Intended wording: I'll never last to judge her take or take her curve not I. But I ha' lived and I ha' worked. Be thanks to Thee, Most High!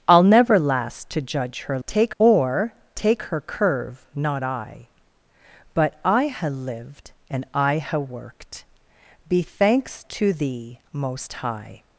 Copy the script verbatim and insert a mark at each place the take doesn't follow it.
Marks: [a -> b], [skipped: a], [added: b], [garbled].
I'll never last to judge her take or take her curve not I. But I ha' lived and I ha' worked. Be thanks to Thee, Most High!